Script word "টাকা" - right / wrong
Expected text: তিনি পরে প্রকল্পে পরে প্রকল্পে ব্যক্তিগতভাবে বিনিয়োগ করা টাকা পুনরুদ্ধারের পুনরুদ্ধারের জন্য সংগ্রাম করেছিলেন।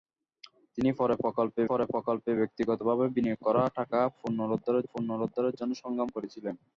right